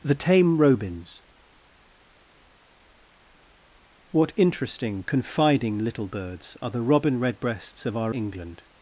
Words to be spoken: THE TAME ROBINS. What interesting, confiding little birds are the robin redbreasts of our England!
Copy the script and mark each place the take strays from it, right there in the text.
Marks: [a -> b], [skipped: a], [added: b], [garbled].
THE TAME ROBINS. What interesting, confiding little birds are the robin redbreasts of our England!